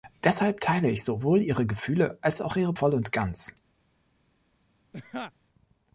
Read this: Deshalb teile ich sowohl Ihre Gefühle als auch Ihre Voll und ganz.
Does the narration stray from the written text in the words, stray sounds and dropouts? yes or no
yes